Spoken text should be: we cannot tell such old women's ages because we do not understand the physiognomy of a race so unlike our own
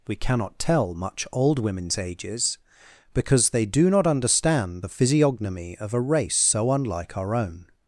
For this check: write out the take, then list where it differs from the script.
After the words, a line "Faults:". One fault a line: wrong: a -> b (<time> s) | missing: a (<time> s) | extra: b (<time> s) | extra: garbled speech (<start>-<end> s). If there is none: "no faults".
we cannot tell much old women's ages because they do not understand the physiognomy of a race so unlike our own
Faults:
wrong: such -> much (0.9 s)
wrong: we -> they (3.5 s)